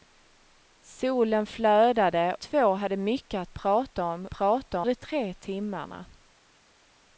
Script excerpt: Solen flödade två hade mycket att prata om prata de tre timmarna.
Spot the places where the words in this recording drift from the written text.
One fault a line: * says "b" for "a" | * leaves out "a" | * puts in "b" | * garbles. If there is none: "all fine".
all fine